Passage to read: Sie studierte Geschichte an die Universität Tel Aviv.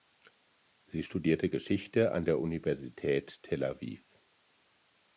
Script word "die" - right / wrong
wrong